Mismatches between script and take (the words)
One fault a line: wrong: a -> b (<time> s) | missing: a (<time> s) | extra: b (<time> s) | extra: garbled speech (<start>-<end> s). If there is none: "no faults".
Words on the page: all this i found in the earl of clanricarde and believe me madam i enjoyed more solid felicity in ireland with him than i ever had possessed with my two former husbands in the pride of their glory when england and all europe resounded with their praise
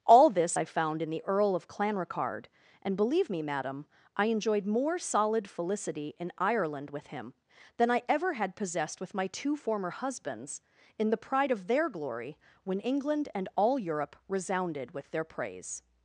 no faults